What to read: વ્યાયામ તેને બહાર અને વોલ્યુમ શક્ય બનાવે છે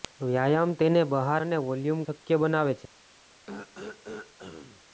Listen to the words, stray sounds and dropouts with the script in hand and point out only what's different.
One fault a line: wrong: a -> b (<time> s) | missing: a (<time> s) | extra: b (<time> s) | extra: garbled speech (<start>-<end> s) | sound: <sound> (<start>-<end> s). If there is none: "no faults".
sound: throat clearing (3.5-4.8 s)